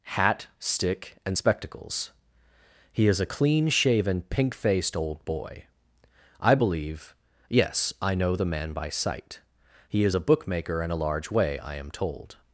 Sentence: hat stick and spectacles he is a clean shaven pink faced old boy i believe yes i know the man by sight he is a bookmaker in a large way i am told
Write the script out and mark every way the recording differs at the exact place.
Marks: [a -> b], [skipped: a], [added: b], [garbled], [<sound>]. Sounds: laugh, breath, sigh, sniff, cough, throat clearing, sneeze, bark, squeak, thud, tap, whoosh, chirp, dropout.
hat stick and spectacles he is a clean shaven pink faced old boy i believe yes i know the man by sight he is a bookmaker in a large way i am told